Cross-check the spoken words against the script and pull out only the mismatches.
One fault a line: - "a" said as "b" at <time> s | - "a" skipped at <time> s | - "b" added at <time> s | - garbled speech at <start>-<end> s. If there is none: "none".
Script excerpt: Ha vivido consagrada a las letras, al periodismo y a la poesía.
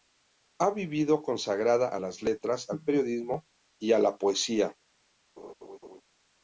none